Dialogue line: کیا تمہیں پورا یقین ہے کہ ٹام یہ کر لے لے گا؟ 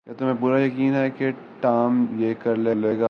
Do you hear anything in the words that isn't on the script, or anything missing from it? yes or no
no